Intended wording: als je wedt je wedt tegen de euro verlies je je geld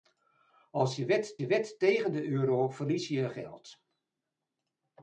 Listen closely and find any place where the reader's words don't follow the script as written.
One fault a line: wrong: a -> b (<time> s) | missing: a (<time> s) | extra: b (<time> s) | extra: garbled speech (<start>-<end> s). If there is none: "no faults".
no faults